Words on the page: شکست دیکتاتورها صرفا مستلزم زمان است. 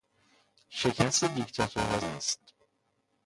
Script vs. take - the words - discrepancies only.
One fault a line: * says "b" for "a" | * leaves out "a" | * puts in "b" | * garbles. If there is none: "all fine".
* leaves out "صرفا مستلزم زمان"